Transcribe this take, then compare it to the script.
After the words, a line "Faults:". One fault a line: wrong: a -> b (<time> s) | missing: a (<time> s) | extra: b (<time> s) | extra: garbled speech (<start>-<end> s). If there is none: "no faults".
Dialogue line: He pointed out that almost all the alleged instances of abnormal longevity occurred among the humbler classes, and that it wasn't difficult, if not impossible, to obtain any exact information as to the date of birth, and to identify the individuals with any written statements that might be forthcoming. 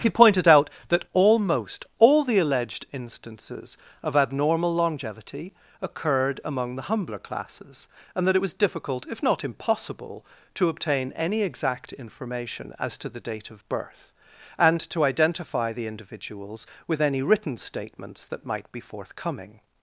He pointed out that almost all the alleged instances of abnormal longevity occurred among the humbler classes, and that it was difficult, if not impossible, to obtain any exact information as to the date of birth, and to identify the individuals with any written statements that might be forthcoming.
Faults:
wrong: wasn't -> was (8.4 s)